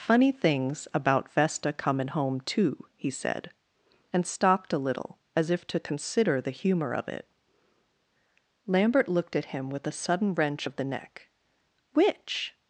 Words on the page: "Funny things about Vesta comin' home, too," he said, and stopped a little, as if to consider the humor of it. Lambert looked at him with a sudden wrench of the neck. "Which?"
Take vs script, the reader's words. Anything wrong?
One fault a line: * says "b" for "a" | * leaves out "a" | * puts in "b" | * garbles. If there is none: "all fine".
all fine